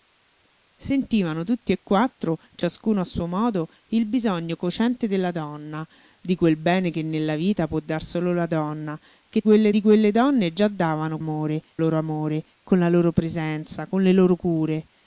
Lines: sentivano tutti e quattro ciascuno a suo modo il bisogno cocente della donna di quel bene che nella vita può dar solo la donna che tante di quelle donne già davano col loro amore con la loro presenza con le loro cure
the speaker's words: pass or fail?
fail